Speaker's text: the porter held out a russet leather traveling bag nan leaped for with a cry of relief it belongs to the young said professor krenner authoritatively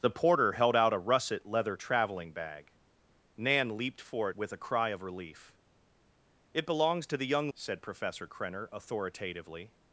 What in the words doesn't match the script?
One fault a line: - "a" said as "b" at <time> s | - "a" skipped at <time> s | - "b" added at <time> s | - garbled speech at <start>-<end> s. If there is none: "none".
none